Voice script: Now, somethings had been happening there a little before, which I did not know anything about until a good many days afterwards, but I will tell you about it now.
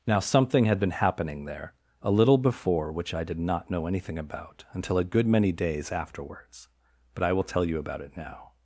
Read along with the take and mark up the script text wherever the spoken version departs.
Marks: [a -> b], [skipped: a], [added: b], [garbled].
Now, [somethings -> something] had been happening there a little before, which I did not know anything about until a good many days afterwards, but I will tell you about it now.